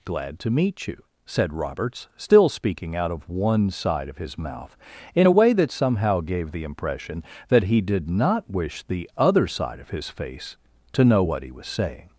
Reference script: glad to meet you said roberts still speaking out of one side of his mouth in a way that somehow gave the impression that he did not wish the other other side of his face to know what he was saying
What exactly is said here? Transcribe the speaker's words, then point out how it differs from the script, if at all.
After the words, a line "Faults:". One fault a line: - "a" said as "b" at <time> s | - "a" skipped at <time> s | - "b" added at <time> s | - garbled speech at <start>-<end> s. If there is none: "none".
glad to meet you said roberts still speaking out of one side of his mouth in a way that somehow gave the impression that he did not wish the other side of his face to know what he was saying
Faults:
- "other" skipped at 9.5 s